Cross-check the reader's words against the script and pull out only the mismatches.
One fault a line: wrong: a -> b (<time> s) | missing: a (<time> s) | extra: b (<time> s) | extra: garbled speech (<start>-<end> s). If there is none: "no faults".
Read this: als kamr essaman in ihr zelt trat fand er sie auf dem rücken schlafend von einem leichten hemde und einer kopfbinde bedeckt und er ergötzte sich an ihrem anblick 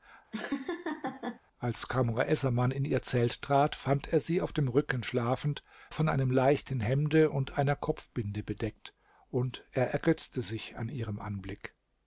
no faults